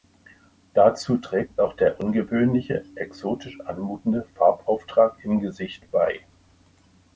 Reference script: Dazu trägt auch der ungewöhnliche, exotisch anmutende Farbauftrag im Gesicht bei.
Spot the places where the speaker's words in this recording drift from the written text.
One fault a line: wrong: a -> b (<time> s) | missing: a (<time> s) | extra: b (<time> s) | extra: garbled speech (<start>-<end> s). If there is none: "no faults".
no faults